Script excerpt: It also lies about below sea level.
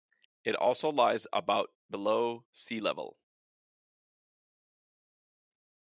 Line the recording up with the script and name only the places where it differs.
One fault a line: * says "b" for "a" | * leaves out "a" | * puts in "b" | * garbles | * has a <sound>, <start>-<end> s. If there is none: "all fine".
all fine